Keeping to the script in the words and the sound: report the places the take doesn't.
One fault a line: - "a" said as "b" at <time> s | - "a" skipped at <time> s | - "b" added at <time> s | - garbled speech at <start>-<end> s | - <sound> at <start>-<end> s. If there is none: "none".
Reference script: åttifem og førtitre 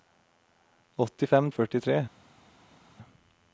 none